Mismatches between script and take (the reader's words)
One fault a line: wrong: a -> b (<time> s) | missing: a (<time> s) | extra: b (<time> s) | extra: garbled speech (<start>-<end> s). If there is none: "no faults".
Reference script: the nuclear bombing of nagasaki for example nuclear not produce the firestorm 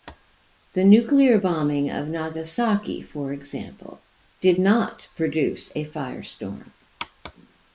wrong: nuclear -> did (4.4 s)
wrong: the -> a (5.7 s)